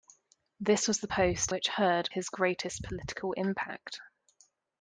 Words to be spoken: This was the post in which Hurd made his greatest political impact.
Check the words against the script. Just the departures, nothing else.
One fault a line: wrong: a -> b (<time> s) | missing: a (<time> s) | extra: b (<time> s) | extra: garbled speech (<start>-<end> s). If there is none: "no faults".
missing: in (1.5 s)
missing: made (2.1 s)